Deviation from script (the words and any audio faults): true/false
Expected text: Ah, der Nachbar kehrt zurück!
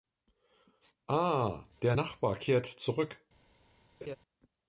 true